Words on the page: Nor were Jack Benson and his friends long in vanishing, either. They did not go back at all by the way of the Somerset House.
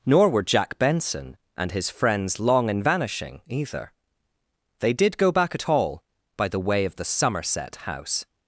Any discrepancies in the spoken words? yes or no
yes